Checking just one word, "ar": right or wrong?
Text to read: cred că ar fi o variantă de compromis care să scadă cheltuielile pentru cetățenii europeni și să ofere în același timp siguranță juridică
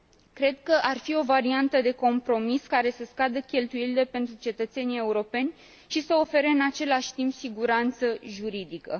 right